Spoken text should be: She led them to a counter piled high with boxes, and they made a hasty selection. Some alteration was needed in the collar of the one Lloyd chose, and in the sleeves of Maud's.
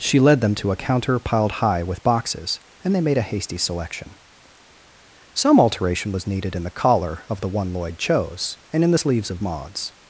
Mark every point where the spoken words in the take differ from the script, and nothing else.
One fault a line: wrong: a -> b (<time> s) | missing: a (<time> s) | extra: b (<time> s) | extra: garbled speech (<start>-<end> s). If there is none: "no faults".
no faults